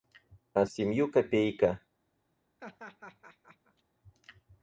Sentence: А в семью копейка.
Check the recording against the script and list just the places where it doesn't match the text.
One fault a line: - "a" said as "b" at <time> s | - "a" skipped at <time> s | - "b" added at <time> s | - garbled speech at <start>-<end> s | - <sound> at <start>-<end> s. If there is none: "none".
- laugh at 2.6-3.8 s